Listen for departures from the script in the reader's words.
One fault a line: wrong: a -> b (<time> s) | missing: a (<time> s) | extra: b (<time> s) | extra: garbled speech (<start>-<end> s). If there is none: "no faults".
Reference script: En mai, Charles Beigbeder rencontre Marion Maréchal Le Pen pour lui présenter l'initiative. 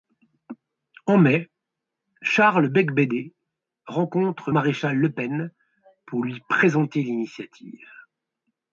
missing: Marion (4.5 s)